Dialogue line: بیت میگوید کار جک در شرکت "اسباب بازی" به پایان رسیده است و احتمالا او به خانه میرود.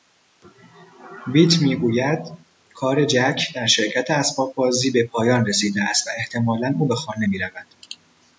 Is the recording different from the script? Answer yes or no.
no